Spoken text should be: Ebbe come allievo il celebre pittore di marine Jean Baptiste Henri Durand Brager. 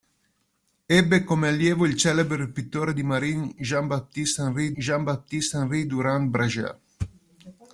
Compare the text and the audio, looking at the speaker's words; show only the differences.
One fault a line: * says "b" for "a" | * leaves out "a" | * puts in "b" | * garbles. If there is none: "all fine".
* puts in "Jean Baptiste Henri"